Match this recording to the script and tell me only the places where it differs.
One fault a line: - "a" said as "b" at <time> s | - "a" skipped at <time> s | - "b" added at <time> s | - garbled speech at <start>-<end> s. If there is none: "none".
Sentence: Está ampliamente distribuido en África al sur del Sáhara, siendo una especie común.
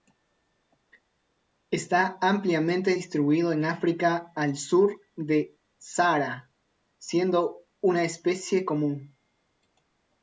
none